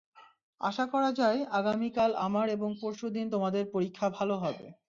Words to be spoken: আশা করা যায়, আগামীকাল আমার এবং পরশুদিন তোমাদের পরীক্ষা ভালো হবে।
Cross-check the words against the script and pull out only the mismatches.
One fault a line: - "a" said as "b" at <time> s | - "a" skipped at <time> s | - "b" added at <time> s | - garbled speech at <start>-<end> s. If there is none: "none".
none